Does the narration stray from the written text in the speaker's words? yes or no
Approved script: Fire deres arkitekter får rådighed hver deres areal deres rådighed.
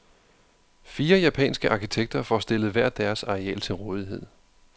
yes